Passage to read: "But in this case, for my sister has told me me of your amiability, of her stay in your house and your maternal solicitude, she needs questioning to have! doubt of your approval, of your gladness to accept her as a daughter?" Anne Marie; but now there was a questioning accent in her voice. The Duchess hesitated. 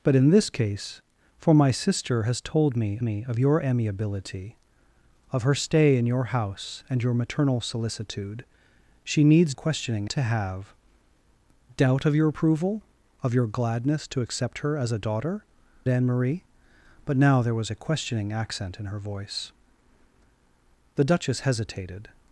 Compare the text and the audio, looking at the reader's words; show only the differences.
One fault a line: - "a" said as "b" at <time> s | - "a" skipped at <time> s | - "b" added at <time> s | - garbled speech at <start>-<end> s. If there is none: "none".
none